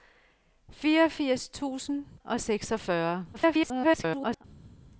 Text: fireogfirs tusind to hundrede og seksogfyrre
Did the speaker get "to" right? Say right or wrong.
wrong